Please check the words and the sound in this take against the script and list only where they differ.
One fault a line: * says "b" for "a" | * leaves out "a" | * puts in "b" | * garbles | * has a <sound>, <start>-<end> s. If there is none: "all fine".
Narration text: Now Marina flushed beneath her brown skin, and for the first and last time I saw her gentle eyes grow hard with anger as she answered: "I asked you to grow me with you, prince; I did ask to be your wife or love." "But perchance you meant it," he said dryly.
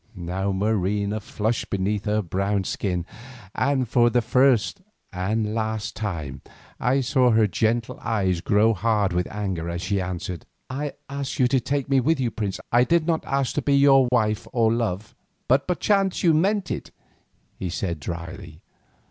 * says "take" for "grow"
* puts in "not"
* has a dropout, 14.1-14.1 s